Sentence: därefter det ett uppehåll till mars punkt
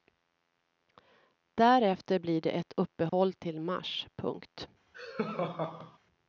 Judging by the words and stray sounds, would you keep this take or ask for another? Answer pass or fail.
fail